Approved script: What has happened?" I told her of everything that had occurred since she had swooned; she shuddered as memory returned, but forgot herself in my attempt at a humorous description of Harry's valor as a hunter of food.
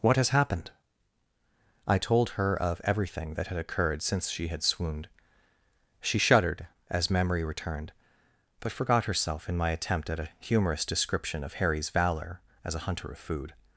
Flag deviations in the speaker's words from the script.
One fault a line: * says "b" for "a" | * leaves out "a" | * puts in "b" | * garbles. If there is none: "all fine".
all fine